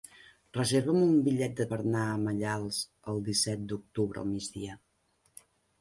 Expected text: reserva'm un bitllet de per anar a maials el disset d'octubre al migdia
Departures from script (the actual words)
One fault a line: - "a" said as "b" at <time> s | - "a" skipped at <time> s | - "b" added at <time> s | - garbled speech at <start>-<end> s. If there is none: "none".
none